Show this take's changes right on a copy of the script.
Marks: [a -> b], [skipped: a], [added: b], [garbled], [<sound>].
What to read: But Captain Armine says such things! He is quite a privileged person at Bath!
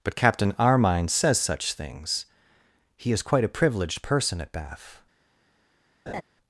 But Captain Armine says such things! He is quite a privileged person at Bath! [laugh]